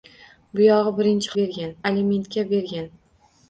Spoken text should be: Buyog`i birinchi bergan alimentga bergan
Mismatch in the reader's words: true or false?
false